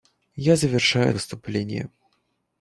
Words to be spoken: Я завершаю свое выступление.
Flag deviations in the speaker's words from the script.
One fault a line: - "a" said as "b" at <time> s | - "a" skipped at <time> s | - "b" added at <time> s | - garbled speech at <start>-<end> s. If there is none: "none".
- "свое" skipped at 1.1 s